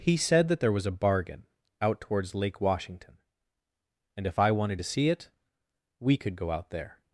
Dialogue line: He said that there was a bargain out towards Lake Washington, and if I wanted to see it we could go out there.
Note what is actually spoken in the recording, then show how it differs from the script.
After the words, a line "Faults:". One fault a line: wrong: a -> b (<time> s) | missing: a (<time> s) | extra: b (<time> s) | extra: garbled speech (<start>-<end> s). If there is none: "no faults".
He said that there was a bargain out towards Lake Washington, and if I wanted to see it we could go out there.
Faults:
no faults